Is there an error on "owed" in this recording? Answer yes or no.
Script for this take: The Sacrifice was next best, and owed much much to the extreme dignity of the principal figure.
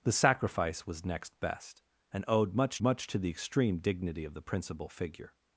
no